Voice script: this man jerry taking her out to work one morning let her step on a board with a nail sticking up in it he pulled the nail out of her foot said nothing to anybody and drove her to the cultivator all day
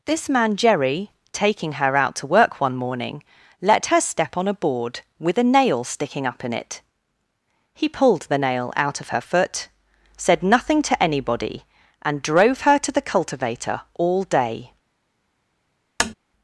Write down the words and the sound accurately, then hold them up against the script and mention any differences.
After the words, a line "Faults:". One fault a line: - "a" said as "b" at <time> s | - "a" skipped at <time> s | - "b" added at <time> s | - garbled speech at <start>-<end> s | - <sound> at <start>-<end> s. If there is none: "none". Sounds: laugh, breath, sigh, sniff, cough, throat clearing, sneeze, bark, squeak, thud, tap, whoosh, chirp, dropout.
this man jerry taking her out to work one morning let her step on a board with a nail sticking up in it he pulled the nail out of her foot said nothing to anybody and drove her to the cultivator all day
Faults:
- tap at 16.0-16.1 s